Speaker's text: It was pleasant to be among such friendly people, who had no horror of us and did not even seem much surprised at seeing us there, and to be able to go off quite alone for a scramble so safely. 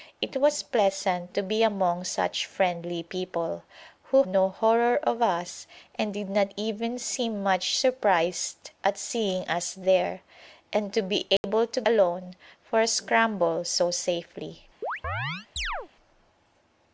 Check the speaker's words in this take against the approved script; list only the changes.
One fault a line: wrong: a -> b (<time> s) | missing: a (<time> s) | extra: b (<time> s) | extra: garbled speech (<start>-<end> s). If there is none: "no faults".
missing: had (4.2 s)
missing: go off quite (11.8 s)